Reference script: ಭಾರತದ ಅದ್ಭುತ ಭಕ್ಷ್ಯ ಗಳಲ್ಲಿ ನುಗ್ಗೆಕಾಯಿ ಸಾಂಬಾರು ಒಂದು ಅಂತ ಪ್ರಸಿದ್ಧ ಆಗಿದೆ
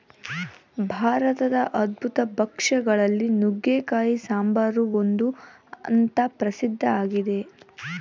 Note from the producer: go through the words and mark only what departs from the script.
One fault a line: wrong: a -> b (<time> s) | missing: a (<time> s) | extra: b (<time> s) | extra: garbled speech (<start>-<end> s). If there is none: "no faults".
no faults